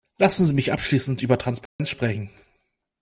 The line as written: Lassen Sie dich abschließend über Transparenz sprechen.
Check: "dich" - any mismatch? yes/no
yes